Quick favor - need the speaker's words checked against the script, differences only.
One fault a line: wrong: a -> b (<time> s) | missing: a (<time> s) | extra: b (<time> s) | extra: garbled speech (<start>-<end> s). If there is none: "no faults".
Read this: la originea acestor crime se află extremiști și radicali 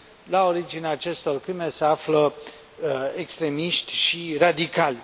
no faults